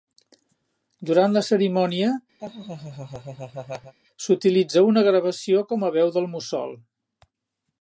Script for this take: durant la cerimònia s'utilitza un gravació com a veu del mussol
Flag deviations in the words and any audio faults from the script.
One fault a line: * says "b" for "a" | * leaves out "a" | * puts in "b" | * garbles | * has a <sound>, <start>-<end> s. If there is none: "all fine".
* has a laugh, 2.4-3.9 s
* says "una" for "un"